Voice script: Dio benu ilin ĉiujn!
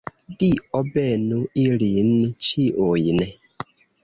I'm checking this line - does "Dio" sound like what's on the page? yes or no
yes